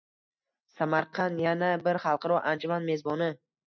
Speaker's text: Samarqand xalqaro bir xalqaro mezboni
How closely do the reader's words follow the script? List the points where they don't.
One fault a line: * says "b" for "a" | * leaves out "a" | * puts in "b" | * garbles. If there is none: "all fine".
* says "yana" for "xalqaro"
* puts in "anjuman"